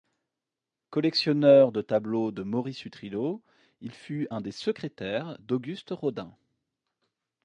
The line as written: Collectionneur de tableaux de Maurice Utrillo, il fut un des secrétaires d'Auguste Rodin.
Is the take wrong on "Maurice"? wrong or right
right